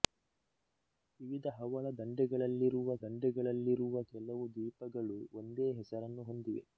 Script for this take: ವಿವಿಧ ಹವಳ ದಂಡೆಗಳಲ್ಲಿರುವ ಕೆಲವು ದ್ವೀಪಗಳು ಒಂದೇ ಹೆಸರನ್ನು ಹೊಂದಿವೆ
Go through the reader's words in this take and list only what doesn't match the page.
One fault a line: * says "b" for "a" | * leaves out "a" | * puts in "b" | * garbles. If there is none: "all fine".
* puts in "ದಂಡೆಗಳಲ್ಲಿರುವ"